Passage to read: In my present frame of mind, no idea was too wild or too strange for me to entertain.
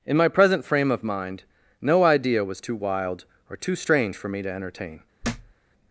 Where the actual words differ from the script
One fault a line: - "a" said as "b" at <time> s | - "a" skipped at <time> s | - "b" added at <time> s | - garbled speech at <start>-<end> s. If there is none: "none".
none